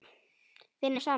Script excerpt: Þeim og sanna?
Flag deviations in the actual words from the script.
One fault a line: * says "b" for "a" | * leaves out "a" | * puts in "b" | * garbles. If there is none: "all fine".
all fine